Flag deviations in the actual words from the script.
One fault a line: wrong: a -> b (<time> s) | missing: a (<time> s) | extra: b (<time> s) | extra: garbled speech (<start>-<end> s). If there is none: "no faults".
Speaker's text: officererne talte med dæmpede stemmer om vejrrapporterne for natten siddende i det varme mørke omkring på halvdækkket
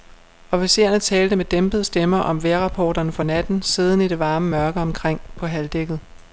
no faults